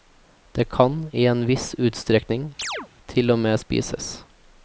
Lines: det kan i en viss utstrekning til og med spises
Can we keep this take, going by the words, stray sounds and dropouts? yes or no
no